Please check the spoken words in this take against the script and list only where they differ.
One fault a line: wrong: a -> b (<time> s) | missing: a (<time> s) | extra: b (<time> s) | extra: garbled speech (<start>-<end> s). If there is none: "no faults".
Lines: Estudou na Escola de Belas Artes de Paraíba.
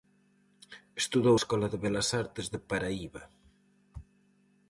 missing: na (1.4 s)